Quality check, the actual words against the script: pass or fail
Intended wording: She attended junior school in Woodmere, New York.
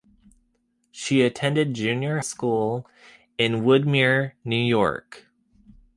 pass